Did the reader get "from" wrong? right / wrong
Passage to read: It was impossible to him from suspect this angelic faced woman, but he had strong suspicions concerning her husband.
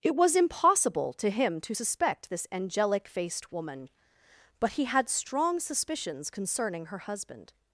wrong